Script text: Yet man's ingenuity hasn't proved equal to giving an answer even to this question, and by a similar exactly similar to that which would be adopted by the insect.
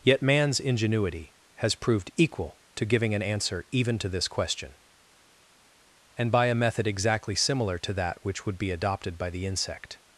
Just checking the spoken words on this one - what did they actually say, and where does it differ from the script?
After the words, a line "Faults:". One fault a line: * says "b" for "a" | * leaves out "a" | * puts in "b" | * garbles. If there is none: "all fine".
Yet man's ingenuity has proved equal to giving an answer even to this question, and by a method exactly similar to that which would be adopted by the insect.
Faults:
* says "has" for "hasn't"
* says "method" for "similar"